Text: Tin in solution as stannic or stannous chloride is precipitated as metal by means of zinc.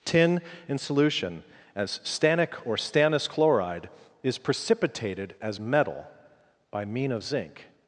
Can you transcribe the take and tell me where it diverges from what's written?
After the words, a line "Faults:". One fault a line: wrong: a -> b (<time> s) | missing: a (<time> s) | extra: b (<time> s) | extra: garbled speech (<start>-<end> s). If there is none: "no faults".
Tin in solution as stannic or stannous chloride is precipitated as metal by mean of zinc.
Faults:
wrong: means -> mean (6.8 s)